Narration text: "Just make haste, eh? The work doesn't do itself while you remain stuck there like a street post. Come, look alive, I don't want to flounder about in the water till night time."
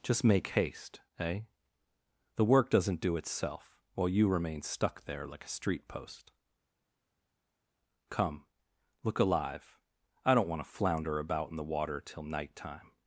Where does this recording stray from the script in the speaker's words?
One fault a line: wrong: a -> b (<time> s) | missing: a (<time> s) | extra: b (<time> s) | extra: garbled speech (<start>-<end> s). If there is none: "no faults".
no faults